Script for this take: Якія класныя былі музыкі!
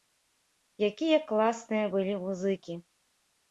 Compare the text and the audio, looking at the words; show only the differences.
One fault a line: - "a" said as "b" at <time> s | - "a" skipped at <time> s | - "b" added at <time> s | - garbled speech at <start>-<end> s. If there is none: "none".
none